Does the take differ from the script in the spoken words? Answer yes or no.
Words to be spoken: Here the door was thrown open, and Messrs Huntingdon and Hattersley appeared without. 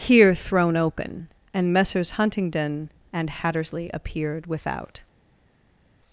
yes